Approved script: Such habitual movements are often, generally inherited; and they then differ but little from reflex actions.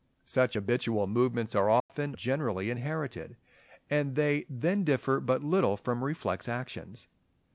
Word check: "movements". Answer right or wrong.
right